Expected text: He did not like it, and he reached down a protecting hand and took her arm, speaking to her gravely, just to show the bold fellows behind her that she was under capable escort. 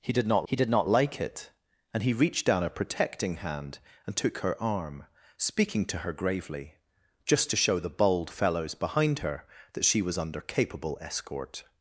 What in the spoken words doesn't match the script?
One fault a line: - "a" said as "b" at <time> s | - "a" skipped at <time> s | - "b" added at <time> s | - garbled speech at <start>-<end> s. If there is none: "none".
- "he did not" added at 0.4 s